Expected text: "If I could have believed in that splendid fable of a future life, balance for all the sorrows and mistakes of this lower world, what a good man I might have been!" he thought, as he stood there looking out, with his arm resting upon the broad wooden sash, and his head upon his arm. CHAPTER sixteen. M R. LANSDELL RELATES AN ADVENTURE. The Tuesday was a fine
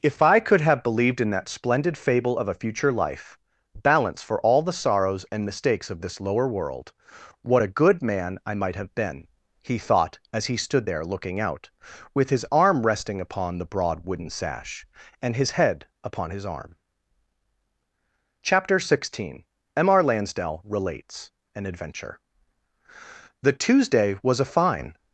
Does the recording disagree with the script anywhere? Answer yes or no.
no